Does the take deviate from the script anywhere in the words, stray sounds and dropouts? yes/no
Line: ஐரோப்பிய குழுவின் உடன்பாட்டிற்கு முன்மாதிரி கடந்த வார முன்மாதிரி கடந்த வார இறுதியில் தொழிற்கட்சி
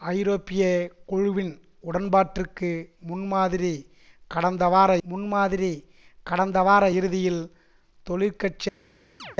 yes